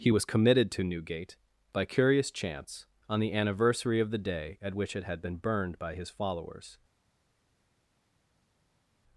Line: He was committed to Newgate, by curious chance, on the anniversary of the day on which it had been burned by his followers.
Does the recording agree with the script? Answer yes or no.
no